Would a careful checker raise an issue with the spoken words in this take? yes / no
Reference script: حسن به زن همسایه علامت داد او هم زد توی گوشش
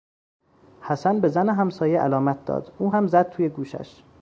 no